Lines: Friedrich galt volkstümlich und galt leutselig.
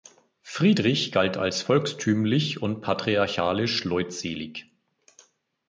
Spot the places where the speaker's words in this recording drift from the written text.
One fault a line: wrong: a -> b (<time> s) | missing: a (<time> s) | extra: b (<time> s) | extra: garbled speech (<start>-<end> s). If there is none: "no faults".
extra: als (1.4 s)
wrong: galt -> patriarchalisch (2.8 s)